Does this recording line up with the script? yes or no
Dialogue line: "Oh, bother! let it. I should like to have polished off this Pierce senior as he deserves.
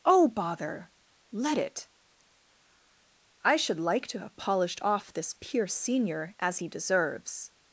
yes